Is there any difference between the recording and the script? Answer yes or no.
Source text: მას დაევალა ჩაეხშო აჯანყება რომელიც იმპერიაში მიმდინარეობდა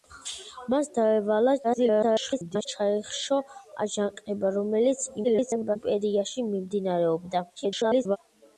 yes